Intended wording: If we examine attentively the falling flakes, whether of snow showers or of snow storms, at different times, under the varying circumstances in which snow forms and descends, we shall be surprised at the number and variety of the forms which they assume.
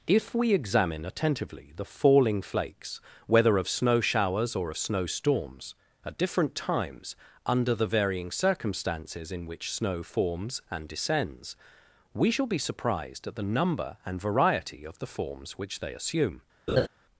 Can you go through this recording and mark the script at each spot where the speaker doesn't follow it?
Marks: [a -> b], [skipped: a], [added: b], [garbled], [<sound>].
If we examine attentively the falling flakes, whether of snow showers or of snow storms, at different times, under the varying circumstances in which snow forms and descends, we shall be surprised at the number and variety of the forms which they assume. [laugh]